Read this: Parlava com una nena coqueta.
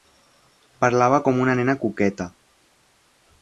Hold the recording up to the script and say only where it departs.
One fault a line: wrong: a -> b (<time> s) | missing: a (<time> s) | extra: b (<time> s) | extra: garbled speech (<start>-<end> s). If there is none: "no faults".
no faults